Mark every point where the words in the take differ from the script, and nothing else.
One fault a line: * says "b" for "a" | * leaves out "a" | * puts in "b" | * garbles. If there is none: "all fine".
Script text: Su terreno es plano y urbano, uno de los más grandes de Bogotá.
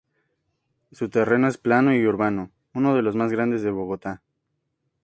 all fine